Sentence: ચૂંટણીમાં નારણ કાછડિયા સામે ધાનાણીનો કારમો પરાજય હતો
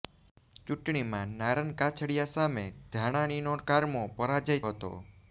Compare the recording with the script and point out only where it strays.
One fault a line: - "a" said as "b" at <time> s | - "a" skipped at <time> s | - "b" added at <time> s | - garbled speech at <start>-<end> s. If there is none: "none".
none